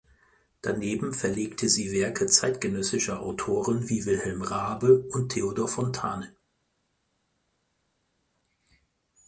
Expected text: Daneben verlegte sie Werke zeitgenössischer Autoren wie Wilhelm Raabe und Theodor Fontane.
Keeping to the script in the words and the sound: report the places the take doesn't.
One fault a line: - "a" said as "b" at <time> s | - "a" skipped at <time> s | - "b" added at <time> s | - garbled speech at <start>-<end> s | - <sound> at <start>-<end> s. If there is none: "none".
none